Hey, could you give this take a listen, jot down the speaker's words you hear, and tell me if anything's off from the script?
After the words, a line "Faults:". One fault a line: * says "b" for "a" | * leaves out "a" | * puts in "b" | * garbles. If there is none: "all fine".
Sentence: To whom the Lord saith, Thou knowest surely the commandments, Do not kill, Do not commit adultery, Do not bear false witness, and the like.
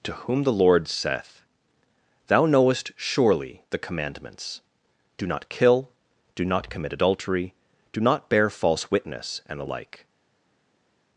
To whom the Lord saith, Thou knowest surely the commandments, Do not kill, Do not commit adultery, Do not bear false witness, and the like.
Faults:
all fine